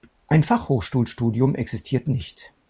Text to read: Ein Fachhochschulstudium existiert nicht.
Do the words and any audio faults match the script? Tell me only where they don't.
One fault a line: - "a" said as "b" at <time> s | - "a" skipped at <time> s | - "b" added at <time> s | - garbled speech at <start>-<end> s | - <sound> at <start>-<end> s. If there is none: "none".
none